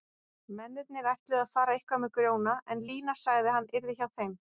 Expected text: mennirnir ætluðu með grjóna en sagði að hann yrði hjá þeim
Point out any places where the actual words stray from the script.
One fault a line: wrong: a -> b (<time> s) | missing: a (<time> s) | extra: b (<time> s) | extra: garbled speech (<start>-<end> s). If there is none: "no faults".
extra: að fara eitthvað (1.4 s)
extra: lína (2.9 s)